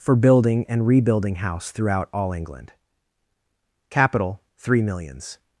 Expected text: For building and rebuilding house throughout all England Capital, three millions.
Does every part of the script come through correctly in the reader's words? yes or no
yes